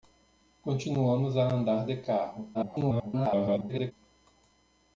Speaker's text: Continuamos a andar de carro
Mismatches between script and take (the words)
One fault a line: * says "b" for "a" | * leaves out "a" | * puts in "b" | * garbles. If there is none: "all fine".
* garbles